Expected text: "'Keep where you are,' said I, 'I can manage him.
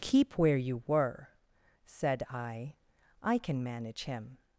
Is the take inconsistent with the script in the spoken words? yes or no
yes